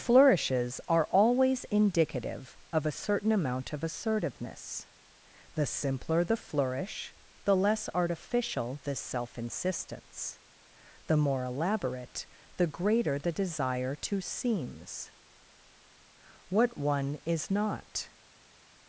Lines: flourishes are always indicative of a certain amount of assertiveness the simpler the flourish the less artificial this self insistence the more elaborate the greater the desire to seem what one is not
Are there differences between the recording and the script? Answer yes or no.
yes